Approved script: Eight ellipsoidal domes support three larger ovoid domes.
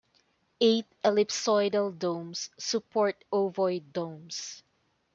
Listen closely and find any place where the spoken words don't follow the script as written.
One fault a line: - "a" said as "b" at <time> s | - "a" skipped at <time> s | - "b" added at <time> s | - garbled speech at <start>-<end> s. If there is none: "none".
- "three larger" skipped at 3.2 s